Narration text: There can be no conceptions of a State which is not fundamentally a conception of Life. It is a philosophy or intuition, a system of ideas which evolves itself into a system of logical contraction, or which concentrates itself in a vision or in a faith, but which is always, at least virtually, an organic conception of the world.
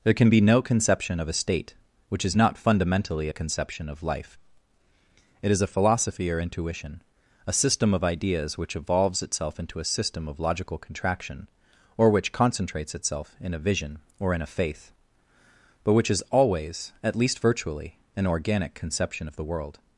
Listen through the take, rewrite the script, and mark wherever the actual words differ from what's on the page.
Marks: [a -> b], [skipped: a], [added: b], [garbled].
There can be no [conceptions -> conception] of a State which is not fundamentally a conception of Life. It is a philosophy or intuition, a system of ideas which evolves itself into a system of logical contraction, or which concentrates itself in a vision or in a faith, but which is always, at least virtually, an organic conception of the world.